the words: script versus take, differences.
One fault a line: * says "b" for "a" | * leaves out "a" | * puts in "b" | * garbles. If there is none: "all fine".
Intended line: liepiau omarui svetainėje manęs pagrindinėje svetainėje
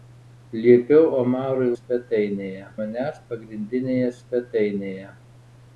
all fine